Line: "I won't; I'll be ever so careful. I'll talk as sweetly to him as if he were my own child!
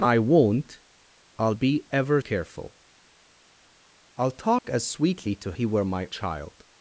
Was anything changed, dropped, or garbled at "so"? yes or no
yes